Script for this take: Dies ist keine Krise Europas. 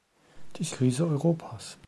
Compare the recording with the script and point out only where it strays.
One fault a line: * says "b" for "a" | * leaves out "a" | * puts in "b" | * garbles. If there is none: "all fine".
* leaves out "ist keine"